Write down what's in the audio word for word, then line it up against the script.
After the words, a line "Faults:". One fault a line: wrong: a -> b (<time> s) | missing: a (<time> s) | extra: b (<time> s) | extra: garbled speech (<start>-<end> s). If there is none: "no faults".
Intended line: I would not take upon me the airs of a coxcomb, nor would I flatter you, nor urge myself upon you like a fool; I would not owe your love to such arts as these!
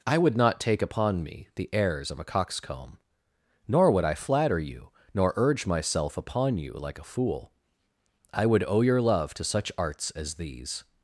I would not take upon me the airs of a coxcomb, nor would I flatter you, nor urge myself upon you like a fool; I would owe your love to such arts as these!
Faults:
missing: not (8.6 s)